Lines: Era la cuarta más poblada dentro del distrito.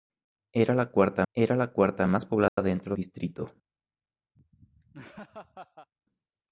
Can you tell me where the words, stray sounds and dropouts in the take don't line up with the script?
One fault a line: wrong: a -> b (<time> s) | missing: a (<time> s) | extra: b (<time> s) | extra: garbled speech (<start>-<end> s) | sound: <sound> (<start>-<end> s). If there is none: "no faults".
extra: era la cuarta (1.3 s)
sound: dropout (2.5-2.6 s)
missing: del (3.0 s)
sound: laugh (4.4-5.9 s)